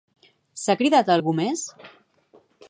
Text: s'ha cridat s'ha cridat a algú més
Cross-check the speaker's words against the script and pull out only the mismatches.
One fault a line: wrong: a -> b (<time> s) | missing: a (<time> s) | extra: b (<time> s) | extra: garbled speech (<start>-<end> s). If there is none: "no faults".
missing: s'ha cridat (1.1 s)